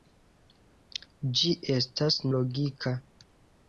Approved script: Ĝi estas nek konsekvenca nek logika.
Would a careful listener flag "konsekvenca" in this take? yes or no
yes